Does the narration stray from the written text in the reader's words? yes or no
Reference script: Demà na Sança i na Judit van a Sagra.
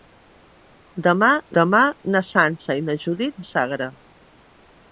yes